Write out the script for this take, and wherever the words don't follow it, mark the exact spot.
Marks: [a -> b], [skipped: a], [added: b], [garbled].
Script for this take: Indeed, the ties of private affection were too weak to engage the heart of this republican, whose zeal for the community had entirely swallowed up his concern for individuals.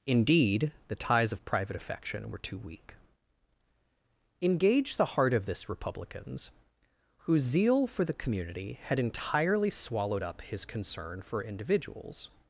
Indeed, the ties of private affection were too weak [skipped: to] engage the heart of this [republican, -> republicans] whose zeal for the community had entirely swallowed up his concern for individuals.